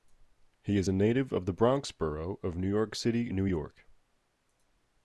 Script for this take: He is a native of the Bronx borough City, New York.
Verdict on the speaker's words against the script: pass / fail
fail